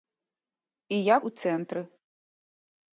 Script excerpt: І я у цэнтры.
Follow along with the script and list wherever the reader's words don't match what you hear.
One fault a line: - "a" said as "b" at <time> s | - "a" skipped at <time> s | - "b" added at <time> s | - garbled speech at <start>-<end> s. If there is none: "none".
none